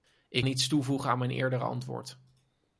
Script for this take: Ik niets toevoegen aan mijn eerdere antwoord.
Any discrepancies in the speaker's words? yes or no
no